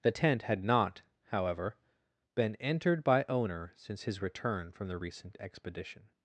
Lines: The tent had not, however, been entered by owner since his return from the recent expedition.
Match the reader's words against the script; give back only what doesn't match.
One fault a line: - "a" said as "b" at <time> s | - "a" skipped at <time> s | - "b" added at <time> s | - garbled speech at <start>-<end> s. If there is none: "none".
none